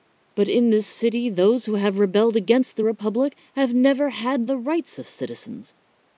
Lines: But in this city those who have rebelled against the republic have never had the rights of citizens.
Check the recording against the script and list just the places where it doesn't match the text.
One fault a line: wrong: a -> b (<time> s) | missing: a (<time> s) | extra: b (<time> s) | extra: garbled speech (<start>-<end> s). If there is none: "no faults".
no faults